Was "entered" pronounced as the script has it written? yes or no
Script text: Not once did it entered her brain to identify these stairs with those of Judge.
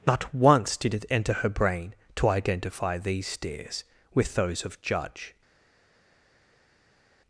no